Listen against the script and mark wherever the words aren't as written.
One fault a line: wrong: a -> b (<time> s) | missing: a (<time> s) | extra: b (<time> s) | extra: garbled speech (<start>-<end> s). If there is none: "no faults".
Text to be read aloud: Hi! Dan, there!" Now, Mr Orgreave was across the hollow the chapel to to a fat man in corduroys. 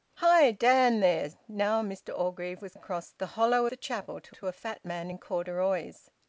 no faults